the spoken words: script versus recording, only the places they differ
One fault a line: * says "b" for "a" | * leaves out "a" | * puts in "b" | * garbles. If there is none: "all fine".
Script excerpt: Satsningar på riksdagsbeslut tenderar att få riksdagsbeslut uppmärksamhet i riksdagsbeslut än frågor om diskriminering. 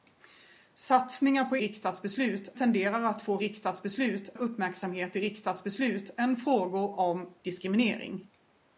all fine